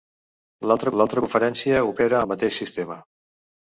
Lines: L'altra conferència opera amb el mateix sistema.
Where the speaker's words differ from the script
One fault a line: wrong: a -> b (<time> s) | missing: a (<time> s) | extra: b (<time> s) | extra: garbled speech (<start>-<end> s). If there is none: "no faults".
extra: l'altra (1.0 s)
missing: amb (2.2 s)